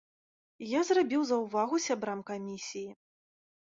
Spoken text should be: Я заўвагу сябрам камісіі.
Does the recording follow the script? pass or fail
fail